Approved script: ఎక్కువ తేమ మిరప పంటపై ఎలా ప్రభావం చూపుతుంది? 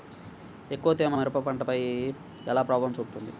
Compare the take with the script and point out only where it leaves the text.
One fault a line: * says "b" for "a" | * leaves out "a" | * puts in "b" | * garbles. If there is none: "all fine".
all fine